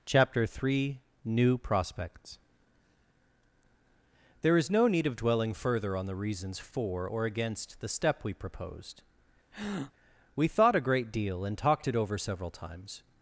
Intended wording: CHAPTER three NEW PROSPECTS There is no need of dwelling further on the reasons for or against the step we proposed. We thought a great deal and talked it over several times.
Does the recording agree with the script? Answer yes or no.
yes